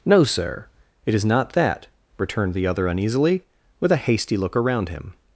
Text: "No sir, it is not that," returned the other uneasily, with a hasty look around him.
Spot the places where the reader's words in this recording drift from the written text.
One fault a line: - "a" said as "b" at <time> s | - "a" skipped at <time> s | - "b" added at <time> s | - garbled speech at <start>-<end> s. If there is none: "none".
none